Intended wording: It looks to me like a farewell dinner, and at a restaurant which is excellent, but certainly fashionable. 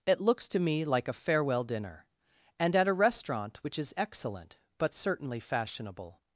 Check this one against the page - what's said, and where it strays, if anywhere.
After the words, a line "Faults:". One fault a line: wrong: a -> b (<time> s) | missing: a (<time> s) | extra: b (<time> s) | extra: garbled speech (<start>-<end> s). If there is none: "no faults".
It looks to me like a farewell dinner, and at a restaurant which is excellent, but certainly fashionable.
Faults:
no faults